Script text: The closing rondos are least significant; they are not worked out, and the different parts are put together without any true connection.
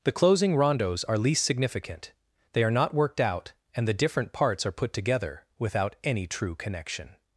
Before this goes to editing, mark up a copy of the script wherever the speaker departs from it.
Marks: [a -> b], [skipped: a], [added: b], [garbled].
The closing rondos are least significant; they are not worked out, and the different parts are put together without any true connection.